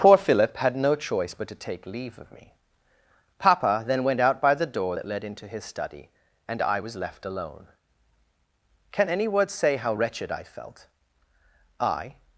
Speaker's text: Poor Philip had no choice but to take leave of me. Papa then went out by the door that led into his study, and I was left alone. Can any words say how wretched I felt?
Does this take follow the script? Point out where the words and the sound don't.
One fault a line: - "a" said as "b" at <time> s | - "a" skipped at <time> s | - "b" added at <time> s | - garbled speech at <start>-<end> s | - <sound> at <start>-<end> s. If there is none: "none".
- "I" added at 11.8 s